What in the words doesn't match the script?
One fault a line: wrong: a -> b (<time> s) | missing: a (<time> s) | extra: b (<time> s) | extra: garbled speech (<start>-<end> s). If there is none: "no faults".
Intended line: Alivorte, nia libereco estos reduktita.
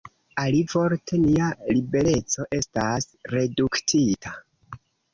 wrong: estos -> estas (2.6 s)